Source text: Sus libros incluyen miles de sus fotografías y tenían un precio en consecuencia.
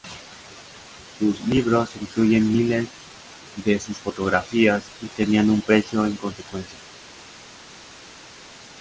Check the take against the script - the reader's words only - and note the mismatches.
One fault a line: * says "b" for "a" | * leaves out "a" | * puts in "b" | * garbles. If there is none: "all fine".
all fine